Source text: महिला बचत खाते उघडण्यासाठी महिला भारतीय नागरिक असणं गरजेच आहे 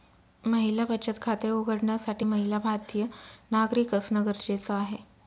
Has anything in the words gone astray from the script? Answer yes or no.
no